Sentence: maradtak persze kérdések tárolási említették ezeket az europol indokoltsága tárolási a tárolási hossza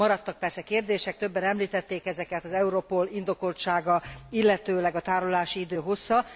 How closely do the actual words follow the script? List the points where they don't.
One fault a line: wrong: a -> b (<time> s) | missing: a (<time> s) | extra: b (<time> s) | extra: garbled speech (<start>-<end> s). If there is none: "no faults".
wrong: tárolási -> többen (1.2 s)
wrong: tárolási -> illetőleg (4.3 s)
extra: idő (5.6 s)